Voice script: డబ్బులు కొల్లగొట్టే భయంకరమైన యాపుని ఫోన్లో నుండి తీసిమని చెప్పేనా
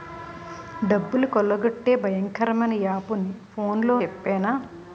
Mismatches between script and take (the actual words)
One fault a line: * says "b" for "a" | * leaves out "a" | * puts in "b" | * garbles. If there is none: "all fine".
* leaves out "నుండి తీసిమని"